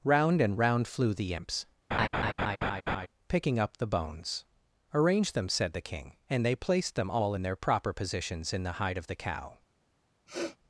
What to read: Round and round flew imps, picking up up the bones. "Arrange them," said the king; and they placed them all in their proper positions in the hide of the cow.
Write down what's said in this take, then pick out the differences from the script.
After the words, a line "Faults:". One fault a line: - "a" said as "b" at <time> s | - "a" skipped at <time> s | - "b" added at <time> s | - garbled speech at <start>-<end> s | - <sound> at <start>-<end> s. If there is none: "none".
Round and round flew the imps, picking up the bones. "Arrange them," said the king; and they placed them all in their proper positions in the hide of the cow.
Faults:
- "the" added at 1.1 s
- laugh at 1.9-3.1 s
- "up" skipped at 3.8 s
- sniff at 10.3-10.6 s